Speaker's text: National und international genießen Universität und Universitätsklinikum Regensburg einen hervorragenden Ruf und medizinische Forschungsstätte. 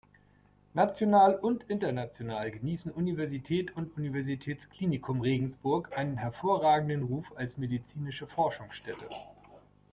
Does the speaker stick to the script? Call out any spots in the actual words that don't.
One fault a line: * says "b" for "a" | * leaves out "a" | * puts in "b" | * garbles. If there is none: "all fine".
* says "als" for "und"